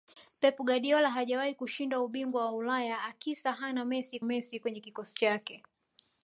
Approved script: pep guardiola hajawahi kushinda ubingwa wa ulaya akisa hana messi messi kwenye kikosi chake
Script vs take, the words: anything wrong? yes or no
no